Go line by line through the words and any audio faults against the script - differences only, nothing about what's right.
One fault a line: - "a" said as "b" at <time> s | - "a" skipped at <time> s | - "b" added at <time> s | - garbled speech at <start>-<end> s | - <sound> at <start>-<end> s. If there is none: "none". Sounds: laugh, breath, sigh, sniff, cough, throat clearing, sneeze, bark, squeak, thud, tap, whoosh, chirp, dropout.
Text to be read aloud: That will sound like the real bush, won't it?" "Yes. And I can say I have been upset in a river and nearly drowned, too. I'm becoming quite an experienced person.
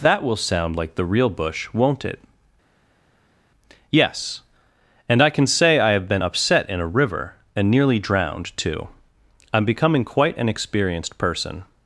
none